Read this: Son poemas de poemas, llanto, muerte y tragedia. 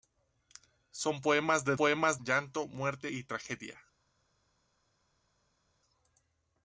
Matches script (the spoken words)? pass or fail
pass